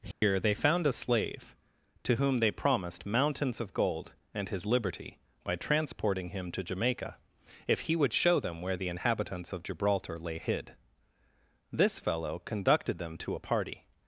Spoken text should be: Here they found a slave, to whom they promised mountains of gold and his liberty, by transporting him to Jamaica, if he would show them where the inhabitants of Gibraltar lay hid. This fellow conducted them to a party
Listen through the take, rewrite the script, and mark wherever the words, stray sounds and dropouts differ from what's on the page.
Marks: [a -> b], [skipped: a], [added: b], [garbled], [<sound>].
Here [dropout] they found a slave, to whom they promised mountains of gold and his liberty, by transporting him to Jamaica, if he would show them where the inhabitants of Gibraltar lay hid. This fellow conducted them to a party